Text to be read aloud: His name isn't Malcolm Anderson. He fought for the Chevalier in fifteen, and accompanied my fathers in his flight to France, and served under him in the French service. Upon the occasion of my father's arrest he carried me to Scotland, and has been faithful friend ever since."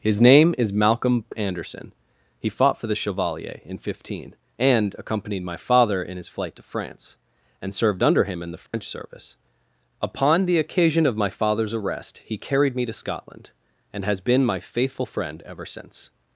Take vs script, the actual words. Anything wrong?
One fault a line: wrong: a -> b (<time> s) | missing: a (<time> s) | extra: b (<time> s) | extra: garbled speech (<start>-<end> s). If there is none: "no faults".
wrong: isn't -> is (0.6 s)
wrong: fathers -> father (5.6 s)
extra: my (14.4 s)